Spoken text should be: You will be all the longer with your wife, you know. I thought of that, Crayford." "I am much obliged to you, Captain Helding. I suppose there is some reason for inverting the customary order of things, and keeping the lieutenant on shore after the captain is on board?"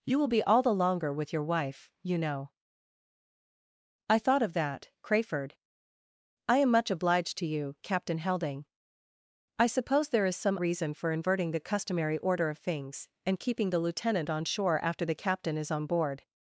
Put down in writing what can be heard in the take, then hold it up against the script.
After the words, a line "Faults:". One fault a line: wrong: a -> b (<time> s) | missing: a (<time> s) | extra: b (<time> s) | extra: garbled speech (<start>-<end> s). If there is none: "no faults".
You will be all the longer with your wife, you know. I thought of that, Crayford." "I am much obliged to you, Captain Helding. I suppose there is some reason for inverting the customary order of things, and keeping the lieutenant on shore after the captain is on board?"
Faults:
no faults